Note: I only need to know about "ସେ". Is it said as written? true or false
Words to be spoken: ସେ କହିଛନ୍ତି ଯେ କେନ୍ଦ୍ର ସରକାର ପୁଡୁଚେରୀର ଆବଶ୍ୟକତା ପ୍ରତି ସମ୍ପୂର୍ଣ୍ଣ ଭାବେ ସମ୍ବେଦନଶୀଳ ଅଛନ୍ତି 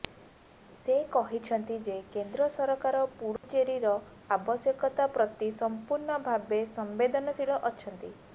true